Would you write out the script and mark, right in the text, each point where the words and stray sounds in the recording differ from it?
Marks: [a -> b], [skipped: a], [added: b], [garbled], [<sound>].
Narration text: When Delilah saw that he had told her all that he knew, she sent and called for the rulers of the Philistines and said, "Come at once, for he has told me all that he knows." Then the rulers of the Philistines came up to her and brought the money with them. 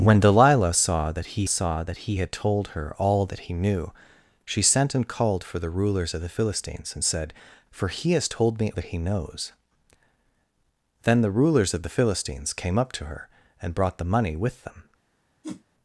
When Delilah saw that he [added: saw that he] had told her all that he knew, she sent and called for the rulers of the Philistines and said, [skipped: "Come at once,] for he has told me [skipped: all] that he knows." Then the rulers of the Philistines came up to her and brought the money with them. [whoosh]